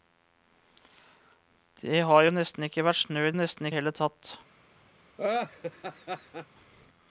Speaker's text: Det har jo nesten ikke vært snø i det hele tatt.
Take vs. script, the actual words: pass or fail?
fail